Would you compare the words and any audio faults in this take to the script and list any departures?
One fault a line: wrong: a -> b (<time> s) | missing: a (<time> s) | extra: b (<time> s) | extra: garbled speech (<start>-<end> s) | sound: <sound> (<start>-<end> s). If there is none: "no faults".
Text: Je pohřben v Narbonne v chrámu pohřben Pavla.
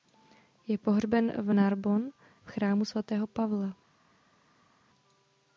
wrong: pohřben -> svatého (2.9 s)